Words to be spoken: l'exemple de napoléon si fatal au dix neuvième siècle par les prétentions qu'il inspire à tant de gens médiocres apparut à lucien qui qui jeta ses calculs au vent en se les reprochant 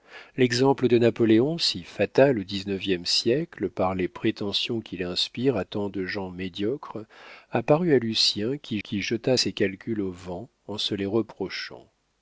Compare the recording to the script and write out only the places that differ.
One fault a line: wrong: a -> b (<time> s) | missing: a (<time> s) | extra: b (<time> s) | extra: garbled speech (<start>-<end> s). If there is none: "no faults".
no faults